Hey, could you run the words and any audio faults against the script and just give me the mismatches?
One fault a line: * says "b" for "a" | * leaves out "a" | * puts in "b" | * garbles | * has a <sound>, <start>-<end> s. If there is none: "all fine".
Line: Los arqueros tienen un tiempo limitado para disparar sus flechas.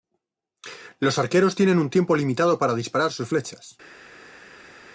all fine